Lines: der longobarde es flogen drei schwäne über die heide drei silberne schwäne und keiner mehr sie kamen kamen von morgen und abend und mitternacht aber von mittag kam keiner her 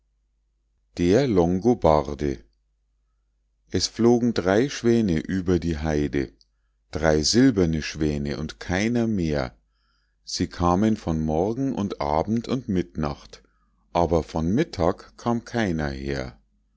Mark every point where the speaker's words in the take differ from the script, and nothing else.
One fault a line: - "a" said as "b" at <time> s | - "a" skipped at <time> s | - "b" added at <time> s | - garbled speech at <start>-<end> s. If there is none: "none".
- "kamen" skipped at 11.0 s